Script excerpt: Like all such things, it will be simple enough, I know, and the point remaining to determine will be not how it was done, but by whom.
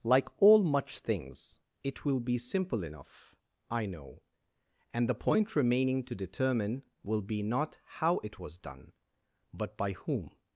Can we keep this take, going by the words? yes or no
no